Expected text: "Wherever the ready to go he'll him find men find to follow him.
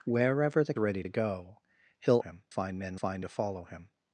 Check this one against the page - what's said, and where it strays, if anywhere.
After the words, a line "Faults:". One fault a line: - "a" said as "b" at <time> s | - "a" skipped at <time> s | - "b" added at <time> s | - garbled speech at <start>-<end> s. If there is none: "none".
"Wherever the ready to go he'll him find men find to follow him.
Faults:
none